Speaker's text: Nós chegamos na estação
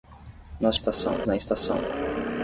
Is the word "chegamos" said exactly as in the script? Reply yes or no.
no